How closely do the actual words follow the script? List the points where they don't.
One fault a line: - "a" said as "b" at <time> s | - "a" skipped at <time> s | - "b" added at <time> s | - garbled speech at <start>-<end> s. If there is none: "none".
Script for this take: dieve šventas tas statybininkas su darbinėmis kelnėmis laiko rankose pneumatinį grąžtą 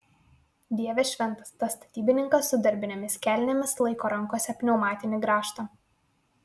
none